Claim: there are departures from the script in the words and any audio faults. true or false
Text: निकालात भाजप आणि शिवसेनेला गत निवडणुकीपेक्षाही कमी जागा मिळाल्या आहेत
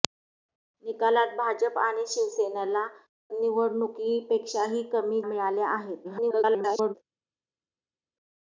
true